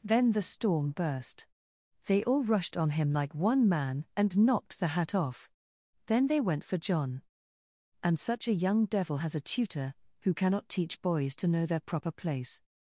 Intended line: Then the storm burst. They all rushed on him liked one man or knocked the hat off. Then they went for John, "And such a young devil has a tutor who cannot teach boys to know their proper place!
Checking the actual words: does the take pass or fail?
fail